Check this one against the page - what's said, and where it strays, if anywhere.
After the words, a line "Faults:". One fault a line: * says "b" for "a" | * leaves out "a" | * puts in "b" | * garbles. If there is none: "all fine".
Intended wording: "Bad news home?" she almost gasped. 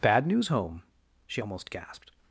"Bad news home?" she almost gasped.
Faults:
all fine